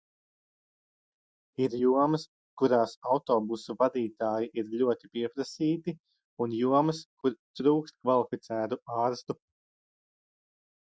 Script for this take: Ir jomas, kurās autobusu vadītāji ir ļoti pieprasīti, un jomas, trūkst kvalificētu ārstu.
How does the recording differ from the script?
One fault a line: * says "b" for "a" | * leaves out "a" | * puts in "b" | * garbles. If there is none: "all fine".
* puts in "kur"